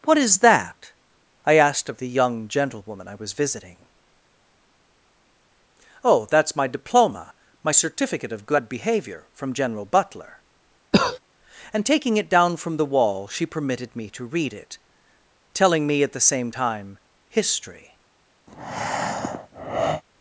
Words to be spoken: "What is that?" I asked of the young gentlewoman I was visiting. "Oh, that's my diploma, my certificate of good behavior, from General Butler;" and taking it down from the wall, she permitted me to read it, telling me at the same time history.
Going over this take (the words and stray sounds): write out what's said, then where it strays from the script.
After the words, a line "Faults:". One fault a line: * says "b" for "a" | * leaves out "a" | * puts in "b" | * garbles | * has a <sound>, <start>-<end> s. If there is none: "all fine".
"What is that?" I asked of the young gentlewoman I was visiting. "Oh, that's my diploma, my certificate of good behavior, from General Butler;" and taking it down from the wall, she permitted me to read it, telling me at the same time history.
Faults:
* has a cough, 10.9-11.2 s
* has a breath, 18.5-20.0 s